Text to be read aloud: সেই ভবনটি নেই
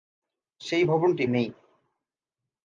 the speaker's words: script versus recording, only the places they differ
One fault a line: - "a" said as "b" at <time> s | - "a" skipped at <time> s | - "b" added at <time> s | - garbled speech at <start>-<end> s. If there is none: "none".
none